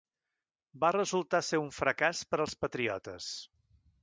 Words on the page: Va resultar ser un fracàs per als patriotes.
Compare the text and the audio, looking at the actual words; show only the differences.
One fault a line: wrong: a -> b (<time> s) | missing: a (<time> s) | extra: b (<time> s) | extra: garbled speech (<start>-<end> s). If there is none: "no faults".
no faults